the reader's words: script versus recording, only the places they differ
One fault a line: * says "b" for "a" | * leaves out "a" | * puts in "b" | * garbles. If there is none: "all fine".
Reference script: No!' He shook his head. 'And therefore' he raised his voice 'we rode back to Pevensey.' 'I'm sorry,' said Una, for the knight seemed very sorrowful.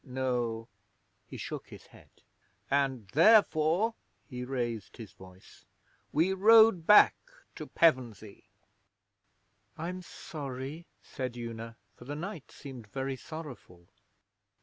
all fine